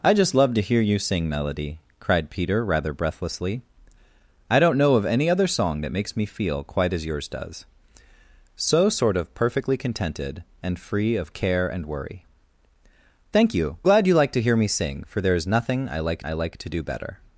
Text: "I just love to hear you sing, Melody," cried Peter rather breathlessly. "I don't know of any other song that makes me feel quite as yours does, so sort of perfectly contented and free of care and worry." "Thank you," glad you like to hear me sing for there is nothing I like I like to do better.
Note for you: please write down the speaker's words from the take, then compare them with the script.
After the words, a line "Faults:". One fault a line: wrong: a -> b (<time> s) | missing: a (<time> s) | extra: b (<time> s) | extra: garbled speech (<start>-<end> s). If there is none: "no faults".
"I just love to hear you sing, Melody," cried Peter rather breathlessly. "I don't know of any other song that makes me feel quite as yours does, so sort of perfectly contented and free of care and worry." "Thank you," glad you like to hear me sing for there is nothing I like I like to do better.
Faults:
no faults